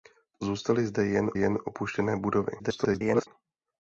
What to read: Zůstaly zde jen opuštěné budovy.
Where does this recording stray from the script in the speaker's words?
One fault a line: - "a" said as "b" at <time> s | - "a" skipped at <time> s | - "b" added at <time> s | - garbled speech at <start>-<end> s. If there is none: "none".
- "jen" added at 1.3 s
- garbled speech at 2.6-3.3 s